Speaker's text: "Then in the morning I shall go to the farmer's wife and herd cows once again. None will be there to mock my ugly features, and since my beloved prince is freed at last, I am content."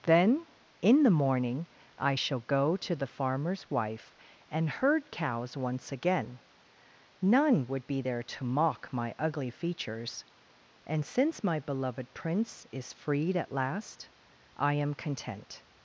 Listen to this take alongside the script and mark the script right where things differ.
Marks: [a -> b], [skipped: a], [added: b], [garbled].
"Then in the morning I shall go to the farmer's wife and herd cows once again. None [will -> would] be there to mock my ugly features, and since my beloved prince is freed at last, I am content."